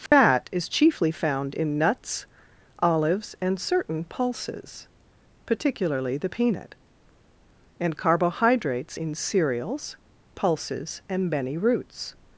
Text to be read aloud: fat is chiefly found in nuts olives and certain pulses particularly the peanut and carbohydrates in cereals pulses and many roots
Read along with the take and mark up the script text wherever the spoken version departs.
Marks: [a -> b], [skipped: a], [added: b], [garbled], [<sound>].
fat [dropout] is chiefly found in nuts olives and certain pulses particularly the peanut and carbohydrates in cereals pulses and many roots